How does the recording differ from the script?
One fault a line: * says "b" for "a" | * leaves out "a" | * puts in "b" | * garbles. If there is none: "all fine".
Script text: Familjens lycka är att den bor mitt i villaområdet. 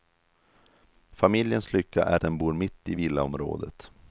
* leaves out "att"